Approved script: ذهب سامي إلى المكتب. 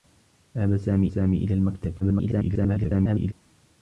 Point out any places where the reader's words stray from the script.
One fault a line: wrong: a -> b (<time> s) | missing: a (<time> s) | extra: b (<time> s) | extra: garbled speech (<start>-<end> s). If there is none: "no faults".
extra: سامي (1.1 s)
extra: garbled speech (2.0-3.3 s)